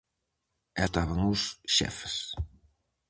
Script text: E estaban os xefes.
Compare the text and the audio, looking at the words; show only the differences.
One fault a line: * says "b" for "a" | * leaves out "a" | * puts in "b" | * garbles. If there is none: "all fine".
all fine